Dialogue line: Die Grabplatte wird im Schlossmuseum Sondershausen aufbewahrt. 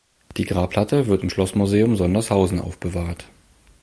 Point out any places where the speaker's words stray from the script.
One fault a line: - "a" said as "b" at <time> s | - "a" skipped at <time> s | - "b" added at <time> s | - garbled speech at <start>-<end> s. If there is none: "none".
none